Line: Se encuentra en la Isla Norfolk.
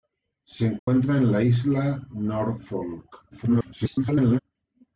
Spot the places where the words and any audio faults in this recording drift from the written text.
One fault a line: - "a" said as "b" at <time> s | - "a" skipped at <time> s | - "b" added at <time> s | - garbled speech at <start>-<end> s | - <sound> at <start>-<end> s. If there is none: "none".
- dropout at 0.8-0.9 s
- garbled speech at 3.3-4.4 s